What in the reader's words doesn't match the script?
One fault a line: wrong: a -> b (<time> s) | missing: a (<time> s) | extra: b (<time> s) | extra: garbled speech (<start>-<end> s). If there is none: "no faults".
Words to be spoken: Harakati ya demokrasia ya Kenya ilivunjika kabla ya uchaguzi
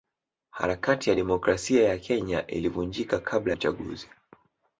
missing: ya (3.5 s)